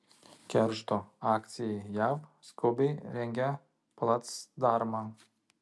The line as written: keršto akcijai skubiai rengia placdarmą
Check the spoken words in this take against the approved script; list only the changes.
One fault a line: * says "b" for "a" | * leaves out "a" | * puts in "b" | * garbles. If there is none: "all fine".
* puts in "jav"